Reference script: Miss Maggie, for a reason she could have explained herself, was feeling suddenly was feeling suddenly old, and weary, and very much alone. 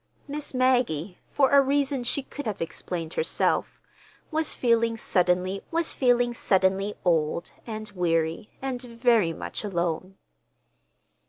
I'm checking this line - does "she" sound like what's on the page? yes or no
yes